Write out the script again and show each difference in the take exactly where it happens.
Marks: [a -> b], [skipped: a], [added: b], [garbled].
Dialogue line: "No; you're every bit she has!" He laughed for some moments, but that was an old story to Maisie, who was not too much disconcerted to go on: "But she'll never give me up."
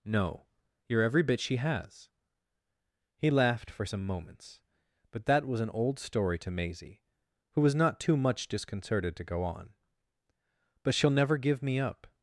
"No; you're every bit she has!" He laughed for some moments, but that was an old story to Maisie, who was not too much disconcerted to go on: "But she'll never give me up."